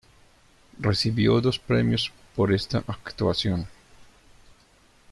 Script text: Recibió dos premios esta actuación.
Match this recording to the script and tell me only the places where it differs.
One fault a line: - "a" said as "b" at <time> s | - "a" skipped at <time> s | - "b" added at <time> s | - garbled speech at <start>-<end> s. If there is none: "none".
- "por" added at 2.4 s